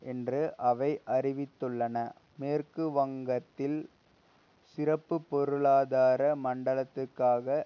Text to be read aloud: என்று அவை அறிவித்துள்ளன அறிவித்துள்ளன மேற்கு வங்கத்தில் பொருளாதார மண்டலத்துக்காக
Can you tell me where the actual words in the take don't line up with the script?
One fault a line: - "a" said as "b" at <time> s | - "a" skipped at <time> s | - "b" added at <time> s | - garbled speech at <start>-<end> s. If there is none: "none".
- "அறிவித்துள்ளன" skipped at 2.0 s
- "சிறப்பு" added at 4.8 s